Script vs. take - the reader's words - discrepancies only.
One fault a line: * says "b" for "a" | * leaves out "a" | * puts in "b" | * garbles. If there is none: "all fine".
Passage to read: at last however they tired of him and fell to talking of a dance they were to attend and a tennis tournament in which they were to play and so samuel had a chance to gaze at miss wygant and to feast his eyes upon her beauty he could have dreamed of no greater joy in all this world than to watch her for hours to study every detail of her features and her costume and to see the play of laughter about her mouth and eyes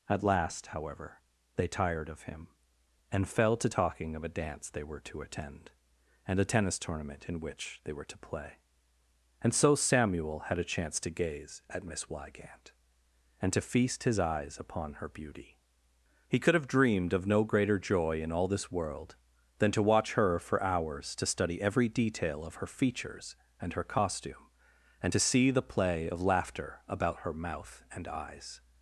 all fine